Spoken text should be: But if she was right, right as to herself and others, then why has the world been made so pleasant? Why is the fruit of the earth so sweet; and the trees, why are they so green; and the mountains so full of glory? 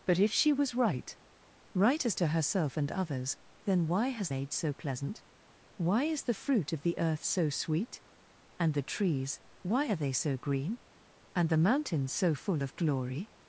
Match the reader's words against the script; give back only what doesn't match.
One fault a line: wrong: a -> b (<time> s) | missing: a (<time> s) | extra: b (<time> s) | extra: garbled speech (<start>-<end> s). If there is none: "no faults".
missing: the world been (4.3 s)